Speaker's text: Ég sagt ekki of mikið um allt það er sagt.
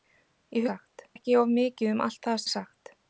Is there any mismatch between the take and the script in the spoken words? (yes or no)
no